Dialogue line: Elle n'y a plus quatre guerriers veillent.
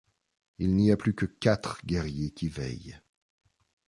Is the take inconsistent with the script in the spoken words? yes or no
yes